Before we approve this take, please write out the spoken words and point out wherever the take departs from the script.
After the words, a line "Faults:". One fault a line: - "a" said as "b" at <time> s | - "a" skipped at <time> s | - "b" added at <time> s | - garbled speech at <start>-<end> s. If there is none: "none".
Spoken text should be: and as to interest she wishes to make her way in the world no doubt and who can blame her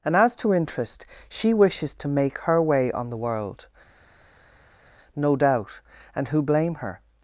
and as to interest she wishes to make her way on the world no doubt and who blame her
Faults:
- "in" said as "on" at 2.9 s
- "can" skipped at 6.4 s